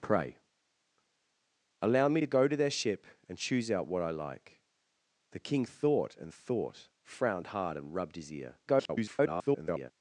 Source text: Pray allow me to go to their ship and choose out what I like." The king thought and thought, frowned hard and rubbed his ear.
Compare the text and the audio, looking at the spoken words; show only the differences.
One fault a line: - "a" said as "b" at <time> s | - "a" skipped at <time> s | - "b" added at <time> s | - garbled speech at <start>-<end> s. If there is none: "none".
- garbled speech at 8.7-9.9 s